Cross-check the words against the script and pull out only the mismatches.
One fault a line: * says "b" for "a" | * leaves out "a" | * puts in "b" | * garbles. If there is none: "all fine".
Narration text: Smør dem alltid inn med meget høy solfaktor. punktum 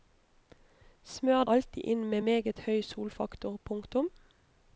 * leaves out "dem"